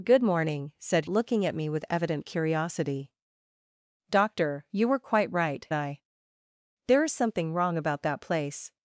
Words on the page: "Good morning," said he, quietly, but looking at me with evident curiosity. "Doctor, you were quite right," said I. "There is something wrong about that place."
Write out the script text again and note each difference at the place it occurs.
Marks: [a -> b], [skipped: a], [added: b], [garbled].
"Good morning," said [skipped: he, quietly, but] looking at me with evident curiosity. "Doctor, you were quite right," [skipped: said] I. "There is something wrong about that place."